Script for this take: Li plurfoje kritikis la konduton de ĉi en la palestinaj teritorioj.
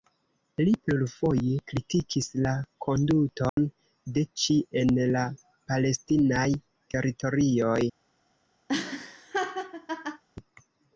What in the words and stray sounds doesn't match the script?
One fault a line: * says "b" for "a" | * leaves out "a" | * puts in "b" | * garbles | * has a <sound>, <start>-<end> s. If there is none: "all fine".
* has a dropout, 3.5-3.6 s
* has a laugh, 8.7-10.2 s